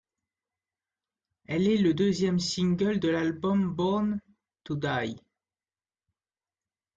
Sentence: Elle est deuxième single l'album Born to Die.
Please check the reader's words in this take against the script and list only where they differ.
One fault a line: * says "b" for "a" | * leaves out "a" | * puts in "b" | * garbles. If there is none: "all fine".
* puts in "le"
* puts in "de"